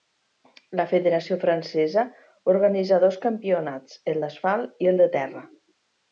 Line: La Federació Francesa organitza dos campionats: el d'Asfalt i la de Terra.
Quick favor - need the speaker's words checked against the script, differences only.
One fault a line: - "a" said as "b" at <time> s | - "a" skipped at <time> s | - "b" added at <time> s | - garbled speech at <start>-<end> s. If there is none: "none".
- "la" said as "el" at 4.9 s